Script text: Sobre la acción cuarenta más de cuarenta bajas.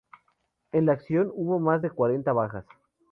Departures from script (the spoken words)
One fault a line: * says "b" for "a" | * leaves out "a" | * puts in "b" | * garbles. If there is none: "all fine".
* says "En" for "Sobre"
* says "hubo" for "cuarenta"